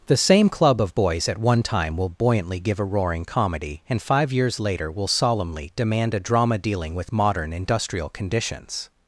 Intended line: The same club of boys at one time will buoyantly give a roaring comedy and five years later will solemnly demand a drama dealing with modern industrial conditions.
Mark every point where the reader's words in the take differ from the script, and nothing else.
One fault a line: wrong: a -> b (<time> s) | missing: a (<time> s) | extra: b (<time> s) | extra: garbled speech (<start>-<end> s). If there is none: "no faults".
no faults